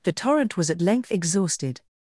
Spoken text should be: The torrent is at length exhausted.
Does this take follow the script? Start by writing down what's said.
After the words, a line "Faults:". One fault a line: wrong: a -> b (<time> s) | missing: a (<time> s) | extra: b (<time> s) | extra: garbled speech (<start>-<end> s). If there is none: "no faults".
The torrent was at length exhausted.
Faults:
wrong: is -> was (0.6 s)